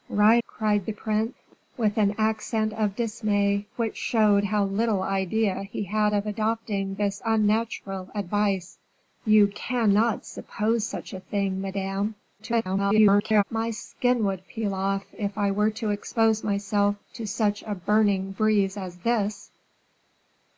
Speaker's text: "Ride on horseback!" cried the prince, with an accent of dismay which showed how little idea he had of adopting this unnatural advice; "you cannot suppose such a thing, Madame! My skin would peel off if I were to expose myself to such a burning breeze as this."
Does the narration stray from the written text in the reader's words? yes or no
yes